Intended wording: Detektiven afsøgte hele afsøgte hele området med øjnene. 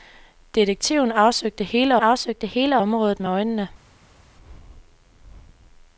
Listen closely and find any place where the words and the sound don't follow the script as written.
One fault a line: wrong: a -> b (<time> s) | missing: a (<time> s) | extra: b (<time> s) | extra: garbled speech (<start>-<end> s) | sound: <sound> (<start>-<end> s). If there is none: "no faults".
no faults